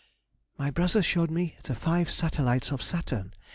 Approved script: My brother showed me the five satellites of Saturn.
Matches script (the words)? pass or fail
pass